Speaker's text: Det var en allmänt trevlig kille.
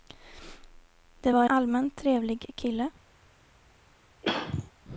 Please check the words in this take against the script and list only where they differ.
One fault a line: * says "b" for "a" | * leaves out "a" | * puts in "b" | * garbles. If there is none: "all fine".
* leaves out "en"